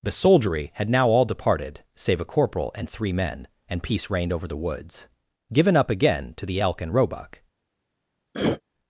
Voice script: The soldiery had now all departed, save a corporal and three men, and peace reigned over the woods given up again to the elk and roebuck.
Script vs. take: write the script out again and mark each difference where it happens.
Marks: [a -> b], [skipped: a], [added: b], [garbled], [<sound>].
The soldiery had now all departed, save a corporal and three men, and peace reigned over the woods given up again to the elk and roebuck. [throat clearing]